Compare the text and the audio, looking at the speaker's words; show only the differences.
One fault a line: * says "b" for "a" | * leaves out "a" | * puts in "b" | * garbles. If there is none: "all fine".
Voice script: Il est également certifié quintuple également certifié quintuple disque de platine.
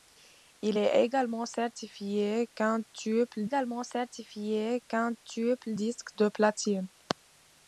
all fine